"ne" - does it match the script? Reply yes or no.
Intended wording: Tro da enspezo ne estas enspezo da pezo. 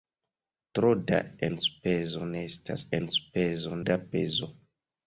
yes